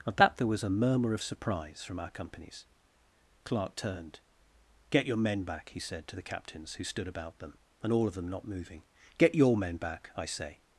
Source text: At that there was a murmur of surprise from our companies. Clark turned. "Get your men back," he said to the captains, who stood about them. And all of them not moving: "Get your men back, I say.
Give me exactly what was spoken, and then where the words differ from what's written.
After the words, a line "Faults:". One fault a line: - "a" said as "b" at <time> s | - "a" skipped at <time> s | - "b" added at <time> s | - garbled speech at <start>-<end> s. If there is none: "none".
At that there was a murmur of surprise from our companies. Clark turned. "Get your men back," he said to the captains, who stood about them. And all of them not moving: "Get your men back, I say.
Faults:
none